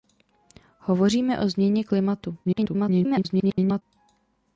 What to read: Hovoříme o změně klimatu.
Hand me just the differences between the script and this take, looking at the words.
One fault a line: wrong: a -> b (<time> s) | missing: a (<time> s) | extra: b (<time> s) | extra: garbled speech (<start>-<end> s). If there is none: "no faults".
extra: garbled speech (2.4-3.8 s)